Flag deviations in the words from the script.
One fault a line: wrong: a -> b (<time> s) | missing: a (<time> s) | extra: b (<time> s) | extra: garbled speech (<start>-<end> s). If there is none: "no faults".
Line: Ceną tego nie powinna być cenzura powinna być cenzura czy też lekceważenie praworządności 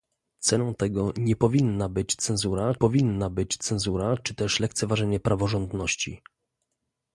no faults